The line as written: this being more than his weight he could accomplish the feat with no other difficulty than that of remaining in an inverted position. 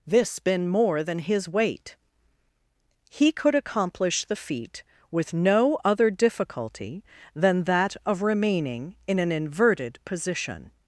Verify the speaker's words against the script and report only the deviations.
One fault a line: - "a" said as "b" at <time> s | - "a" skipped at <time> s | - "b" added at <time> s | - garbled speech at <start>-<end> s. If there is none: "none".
- "being" said as "been" at 0.4 s